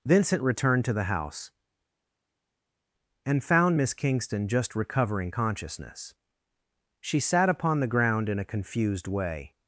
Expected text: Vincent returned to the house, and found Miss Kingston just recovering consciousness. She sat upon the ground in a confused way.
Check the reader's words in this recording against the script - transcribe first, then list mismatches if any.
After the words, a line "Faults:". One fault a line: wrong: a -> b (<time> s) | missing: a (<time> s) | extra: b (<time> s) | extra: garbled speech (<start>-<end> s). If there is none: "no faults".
Vincent returned to the house, and found Miss Kingston just recovering consciousness. She sat upon the ground in a confused way.
Faults:
no faults